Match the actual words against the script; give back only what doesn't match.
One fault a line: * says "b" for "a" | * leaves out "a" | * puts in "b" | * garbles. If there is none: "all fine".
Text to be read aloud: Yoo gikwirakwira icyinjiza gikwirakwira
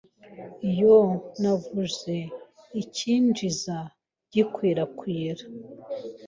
* says "navuze" for "gikwirakwira"